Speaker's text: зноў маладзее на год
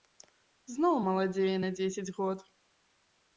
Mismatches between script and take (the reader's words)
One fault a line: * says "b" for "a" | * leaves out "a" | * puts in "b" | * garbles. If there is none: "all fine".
* puts in "дзесяць"